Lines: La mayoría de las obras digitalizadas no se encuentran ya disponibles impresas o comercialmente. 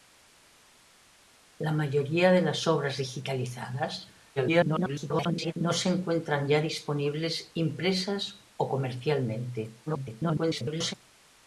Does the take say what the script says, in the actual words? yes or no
no